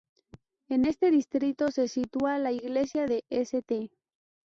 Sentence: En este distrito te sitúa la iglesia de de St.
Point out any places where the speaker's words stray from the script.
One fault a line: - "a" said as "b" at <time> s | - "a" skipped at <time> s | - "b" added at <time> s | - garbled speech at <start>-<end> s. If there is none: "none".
- "te" said as "se" at 1.7 s
- "de" skipped at 3.2 s